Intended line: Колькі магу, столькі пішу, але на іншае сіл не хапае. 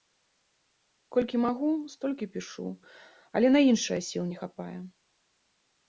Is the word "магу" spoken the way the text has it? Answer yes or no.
yes